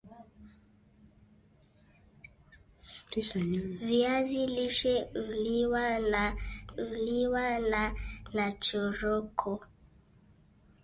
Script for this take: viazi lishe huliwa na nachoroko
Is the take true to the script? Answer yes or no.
no